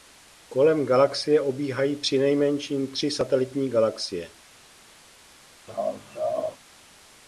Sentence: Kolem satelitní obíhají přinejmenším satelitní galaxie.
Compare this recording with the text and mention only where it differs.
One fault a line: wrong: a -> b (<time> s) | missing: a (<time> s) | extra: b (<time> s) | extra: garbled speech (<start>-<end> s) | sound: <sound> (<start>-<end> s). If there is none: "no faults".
wrong: satelitní -> galaxie (0.8 s)
extra: tři (2.9 s)
sound: laugh (5.7-6.6 s)